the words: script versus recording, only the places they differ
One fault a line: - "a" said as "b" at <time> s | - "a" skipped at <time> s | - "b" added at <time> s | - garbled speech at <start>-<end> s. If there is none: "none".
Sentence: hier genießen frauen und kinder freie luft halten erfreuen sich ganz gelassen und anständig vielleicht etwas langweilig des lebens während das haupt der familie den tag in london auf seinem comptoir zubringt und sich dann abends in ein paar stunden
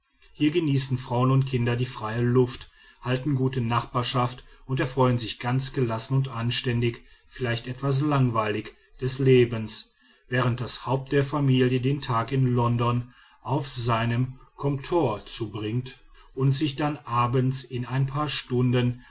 - "die" added at 1.8 s
- "gute nachbarschaft und" added at 3.4 s